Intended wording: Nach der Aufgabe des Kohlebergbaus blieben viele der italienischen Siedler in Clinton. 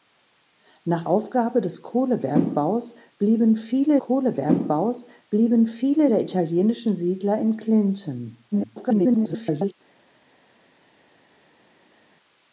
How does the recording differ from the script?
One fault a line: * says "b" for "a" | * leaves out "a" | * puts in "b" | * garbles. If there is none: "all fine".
* leaves out "der"
* puts in "Kohlebergbaus blieben viele"
* garbles